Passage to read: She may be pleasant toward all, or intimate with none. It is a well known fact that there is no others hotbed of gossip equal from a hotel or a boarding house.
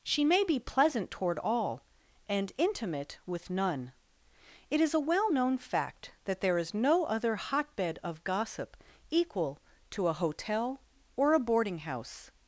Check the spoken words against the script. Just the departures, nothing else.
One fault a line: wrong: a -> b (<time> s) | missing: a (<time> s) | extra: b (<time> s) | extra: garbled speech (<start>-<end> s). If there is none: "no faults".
wrong: or -> and (2.3 s)
wrong: others -> other (7.0 s)
wrong: from -> to (9.9 s)